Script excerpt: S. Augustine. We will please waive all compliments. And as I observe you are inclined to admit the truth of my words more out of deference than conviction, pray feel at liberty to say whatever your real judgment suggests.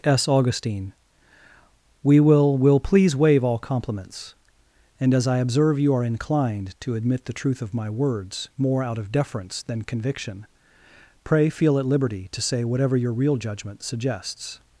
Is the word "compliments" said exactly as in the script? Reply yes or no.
yes